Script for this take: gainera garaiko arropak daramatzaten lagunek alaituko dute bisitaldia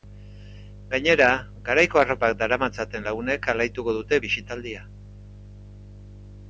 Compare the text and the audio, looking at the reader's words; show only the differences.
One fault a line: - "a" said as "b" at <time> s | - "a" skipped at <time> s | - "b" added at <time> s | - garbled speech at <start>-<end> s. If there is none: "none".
none